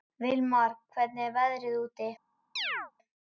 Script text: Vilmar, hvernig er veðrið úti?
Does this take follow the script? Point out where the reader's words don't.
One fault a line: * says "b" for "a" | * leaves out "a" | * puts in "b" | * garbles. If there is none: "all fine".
all fine